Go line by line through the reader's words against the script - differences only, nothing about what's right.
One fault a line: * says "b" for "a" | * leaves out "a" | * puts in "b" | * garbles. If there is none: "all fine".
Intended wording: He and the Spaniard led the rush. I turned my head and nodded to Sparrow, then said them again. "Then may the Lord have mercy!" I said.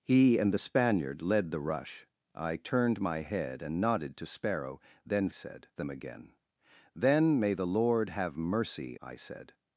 all fine